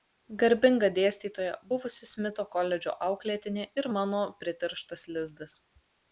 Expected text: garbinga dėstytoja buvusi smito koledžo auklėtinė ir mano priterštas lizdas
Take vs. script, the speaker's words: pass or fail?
pass